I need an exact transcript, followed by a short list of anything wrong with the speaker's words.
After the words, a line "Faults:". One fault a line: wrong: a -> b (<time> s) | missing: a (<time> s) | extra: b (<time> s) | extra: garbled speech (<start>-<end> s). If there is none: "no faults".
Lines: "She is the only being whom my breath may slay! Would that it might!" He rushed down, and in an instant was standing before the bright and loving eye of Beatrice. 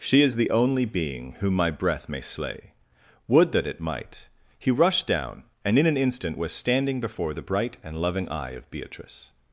"She is the only being whom my breath may slay! Would that it might!" He rushed down, and in an instant was standing before the bright and loving eye of Beatrice.
Faults:
no faults